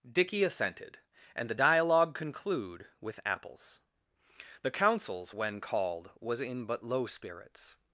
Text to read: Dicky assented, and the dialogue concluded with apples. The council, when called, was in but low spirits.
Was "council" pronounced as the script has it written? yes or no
no